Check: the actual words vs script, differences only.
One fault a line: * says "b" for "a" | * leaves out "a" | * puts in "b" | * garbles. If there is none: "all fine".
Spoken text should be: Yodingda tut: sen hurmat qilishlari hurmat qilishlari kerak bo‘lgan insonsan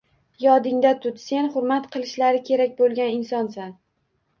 * leaves out "hurmat qilishlari"